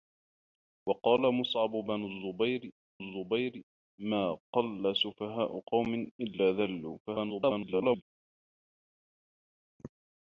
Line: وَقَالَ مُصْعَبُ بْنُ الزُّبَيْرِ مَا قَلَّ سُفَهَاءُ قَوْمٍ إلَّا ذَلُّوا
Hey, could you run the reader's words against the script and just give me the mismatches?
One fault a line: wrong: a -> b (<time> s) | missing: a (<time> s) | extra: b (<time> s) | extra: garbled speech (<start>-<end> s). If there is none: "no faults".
extra: الزُّبَيْرِ (3.0 s)
extra: garbled speech (7.1-8.0 s)